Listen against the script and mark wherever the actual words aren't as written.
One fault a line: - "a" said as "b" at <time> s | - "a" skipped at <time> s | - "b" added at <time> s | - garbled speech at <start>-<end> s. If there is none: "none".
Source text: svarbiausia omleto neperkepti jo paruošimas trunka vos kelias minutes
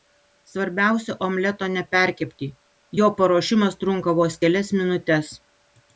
none